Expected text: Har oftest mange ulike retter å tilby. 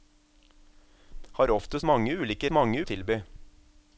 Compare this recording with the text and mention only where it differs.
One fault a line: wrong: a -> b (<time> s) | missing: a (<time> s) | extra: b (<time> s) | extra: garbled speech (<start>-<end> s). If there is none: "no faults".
wrong: retter -> mange (2.5 s)